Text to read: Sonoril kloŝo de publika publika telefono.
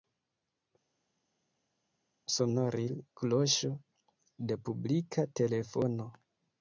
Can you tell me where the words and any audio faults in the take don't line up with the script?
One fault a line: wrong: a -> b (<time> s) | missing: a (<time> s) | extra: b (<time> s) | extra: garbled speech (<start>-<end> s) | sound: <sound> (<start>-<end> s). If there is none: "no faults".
missing: publika (5.3 s)